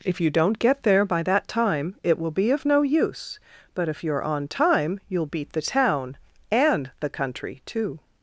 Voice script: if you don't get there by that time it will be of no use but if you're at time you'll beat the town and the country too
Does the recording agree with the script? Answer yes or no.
no